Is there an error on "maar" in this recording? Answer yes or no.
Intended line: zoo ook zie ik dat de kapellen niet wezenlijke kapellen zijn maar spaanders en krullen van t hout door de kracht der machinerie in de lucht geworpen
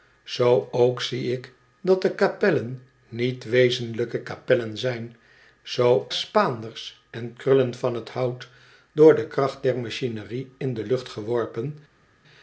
yes